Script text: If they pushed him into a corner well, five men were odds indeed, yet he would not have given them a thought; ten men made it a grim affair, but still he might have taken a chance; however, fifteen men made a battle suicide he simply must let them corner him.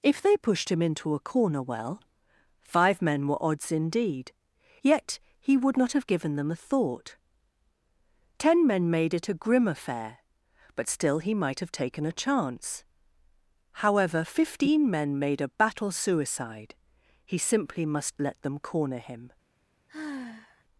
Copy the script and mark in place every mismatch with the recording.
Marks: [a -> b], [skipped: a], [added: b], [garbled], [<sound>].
If they pushed him into a corner well, five men were odds indeed, yet he would not have given them a thought; ten men made it a grim affair, but still he might have taken a chance; however, fifteen men made a battle suicide he simply must let them corner him. [sigh]